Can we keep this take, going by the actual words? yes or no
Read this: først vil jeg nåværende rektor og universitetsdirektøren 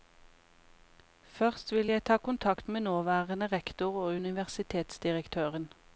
no